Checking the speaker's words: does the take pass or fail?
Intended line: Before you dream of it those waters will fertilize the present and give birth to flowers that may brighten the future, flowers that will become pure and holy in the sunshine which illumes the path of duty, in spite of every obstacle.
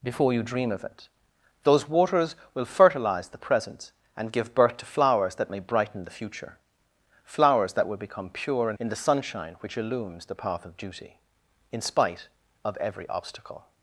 fail